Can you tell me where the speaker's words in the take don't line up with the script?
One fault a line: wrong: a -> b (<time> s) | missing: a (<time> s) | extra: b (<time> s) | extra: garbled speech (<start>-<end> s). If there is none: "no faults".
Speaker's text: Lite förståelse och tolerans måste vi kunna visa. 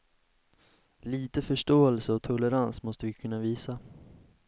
no faults